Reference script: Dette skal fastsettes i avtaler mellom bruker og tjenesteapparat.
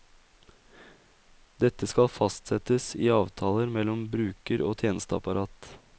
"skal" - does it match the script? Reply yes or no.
yes